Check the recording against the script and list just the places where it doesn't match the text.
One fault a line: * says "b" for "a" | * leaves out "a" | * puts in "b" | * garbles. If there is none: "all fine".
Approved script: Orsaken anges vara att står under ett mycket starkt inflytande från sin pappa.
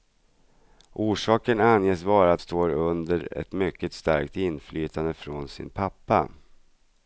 all fine